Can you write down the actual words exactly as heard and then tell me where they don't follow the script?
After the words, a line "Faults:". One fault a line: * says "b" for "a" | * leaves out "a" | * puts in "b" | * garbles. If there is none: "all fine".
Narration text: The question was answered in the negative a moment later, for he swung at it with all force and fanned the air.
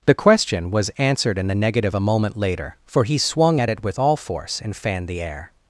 The question was answered in the negative a moment later, for he swung at it with all force and fanned the air.
Faults:
all fine